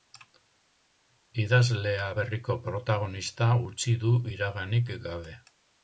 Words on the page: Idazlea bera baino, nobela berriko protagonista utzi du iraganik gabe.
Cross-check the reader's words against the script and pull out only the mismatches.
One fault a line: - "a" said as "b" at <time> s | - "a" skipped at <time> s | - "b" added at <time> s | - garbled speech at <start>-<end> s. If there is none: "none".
- "bera baino nobela" skipped at 2.1 s